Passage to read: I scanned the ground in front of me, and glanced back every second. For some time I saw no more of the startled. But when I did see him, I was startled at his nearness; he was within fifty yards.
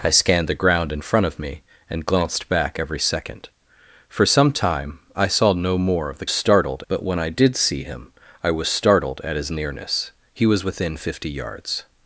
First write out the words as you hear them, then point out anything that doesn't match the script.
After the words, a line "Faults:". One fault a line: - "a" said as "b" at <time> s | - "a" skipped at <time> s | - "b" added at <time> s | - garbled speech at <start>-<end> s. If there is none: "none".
I scanned the ground in front of me, and glanced back every second. For some time I saw no more of the startled. But when I did see him, I was startled at his nearness; he was within fifty yards.
Faults:
none